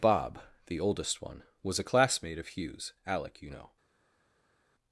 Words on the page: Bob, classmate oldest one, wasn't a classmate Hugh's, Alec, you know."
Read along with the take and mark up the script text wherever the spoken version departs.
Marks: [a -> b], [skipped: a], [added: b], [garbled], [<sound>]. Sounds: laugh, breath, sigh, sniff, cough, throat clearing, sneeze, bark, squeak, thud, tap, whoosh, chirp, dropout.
Bob, [classmate -> the] oldest one, [wasn't -> was] a classmate [added: of] Hugh's, Alec, you know."